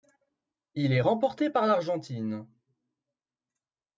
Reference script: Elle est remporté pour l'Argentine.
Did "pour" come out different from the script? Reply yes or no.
yes